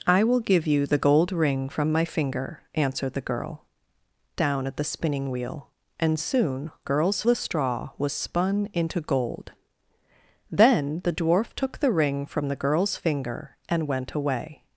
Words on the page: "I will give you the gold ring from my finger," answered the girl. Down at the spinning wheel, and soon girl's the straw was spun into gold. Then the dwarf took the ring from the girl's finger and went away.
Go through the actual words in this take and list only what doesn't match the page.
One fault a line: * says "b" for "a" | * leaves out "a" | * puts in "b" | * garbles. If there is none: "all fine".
all fine